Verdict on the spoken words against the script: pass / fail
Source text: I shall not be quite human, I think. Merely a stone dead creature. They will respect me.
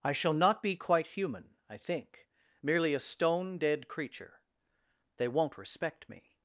fail